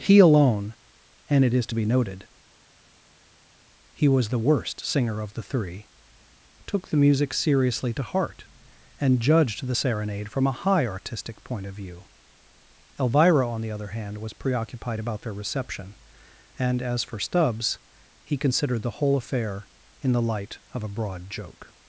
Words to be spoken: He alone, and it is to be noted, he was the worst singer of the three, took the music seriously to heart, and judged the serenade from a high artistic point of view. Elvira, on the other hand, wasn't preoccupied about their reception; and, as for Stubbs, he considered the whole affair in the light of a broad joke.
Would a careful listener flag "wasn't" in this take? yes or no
yes